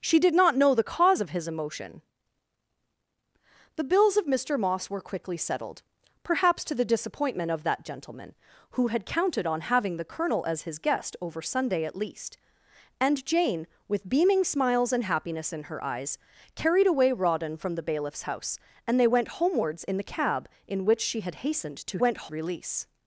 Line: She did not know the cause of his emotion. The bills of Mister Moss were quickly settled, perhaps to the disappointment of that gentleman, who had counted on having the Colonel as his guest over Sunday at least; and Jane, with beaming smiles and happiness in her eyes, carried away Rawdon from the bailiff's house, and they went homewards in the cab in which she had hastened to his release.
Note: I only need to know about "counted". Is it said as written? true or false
true